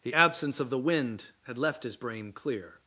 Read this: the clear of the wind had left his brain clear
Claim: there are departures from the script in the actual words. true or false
true